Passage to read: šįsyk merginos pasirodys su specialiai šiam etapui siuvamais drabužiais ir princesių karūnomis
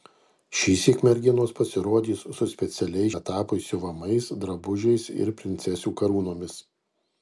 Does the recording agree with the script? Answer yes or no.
no